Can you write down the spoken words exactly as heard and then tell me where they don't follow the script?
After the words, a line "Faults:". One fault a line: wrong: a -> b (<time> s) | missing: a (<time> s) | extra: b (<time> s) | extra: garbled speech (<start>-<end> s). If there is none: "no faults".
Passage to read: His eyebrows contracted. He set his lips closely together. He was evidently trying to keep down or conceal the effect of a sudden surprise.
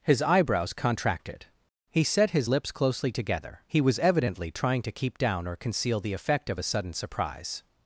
His eyebrows contracted. He set his lips closely together. He was evidently trying to keep down or conceal the effect of a sudden surprise.
Faults:
no faults